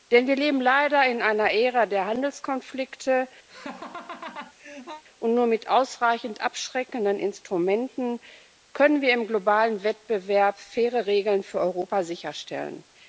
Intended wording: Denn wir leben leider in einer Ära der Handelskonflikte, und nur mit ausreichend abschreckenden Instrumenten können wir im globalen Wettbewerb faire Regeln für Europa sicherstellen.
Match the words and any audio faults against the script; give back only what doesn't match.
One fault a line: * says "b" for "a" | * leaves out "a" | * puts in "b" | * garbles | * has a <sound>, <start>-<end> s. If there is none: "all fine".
* has a laugh, 3.5-5.0 s